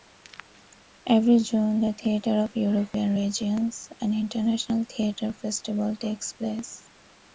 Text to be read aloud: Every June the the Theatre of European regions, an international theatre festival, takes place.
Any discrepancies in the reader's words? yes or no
yes